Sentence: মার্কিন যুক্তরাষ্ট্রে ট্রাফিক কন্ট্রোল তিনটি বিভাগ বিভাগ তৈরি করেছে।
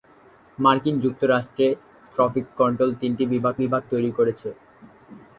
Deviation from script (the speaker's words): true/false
false